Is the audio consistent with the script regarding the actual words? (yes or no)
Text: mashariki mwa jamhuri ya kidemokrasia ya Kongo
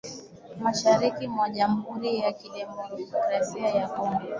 yes